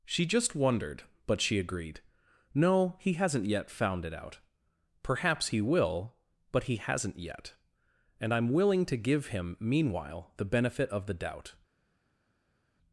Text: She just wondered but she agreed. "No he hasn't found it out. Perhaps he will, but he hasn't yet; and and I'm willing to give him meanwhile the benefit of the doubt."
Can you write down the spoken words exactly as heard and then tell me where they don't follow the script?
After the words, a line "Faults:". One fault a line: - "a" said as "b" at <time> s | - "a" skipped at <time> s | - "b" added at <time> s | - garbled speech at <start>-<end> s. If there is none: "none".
She just wondered but she agreed. "No he hasn't yet found it out. Perhaps he will, but he hasn't yet; and I'm willing to give him meanwhile the benefit of the doubt."
Faults:
- "yet" added at 3.5 s
- "and" skipped at 8.3 s